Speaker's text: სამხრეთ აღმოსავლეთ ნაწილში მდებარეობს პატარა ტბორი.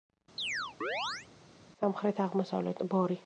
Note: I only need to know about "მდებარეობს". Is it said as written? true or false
false